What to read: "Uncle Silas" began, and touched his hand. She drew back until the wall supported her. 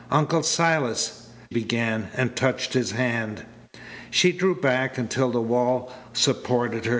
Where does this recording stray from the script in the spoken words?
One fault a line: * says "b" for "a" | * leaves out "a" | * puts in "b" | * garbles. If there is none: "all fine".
all fine